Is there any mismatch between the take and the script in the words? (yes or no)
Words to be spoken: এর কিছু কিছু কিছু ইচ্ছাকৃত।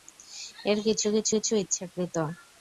no